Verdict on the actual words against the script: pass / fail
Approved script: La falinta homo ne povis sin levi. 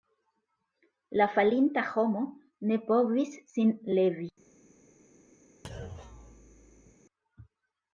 pass